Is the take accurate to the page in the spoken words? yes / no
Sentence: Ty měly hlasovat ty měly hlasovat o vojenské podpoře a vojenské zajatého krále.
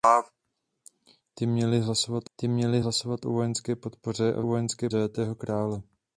yes